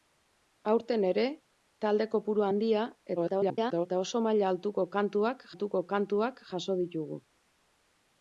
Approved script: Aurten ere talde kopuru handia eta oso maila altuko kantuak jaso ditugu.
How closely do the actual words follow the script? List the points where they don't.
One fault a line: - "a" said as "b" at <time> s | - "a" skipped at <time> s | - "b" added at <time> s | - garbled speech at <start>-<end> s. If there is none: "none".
- garbled speech at 3.2-3.9 s
- "altuko kantuak" added at 5.5 s